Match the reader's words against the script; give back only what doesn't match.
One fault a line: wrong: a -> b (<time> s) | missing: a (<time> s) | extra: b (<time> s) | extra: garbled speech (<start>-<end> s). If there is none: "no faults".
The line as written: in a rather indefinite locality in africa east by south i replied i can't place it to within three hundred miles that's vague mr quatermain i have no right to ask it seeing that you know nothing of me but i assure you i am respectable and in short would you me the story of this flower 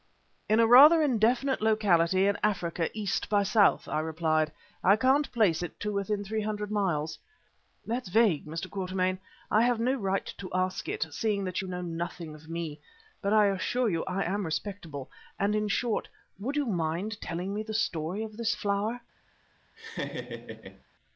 extra: mind telling (16.7 s)